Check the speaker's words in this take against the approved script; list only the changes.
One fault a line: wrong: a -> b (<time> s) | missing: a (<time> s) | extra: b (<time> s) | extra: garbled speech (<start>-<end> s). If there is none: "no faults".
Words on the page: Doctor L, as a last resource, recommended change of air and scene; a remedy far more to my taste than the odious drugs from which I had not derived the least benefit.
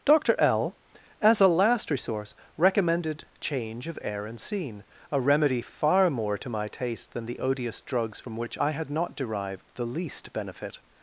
no faults